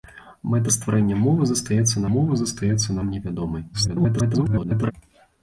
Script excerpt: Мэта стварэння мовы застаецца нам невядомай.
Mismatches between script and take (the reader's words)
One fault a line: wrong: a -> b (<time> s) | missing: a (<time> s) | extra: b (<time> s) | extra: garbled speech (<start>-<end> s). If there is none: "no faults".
extra: мовы застаецца (2.1 s)
extra: garbled speech (3.7-4.9 s)